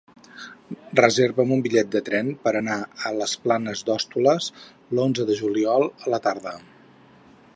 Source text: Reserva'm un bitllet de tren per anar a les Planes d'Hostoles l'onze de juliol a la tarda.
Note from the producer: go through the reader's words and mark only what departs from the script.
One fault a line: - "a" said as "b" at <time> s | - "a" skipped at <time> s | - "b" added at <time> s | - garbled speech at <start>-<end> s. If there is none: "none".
none